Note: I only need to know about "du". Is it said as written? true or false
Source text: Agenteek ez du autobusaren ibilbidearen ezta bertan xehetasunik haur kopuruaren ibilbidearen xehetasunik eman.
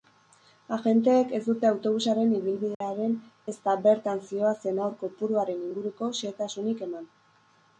false